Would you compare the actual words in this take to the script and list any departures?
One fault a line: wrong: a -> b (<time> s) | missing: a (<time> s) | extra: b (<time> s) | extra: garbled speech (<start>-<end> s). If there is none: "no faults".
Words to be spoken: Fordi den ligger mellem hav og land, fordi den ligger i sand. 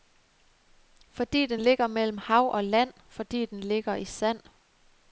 no faults